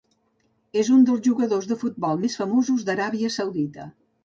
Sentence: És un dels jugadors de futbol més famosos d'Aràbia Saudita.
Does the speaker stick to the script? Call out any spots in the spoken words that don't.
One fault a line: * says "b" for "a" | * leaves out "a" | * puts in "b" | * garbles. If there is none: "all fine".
all fine